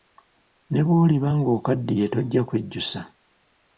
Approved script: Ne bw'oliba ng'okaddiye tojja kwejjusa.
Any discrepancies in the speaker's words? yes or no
no